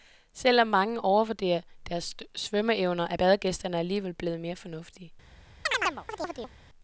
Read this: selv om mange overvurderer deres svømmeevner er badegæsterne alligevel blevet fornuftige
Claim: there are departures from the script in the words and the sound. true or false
true